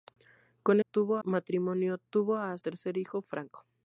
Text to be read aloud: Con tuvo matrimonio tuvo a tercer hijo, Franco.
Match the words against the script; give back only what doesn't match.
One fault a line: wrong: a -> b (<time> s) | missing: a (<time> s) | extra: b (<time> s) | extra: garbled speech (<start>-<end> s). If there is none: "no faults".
no faults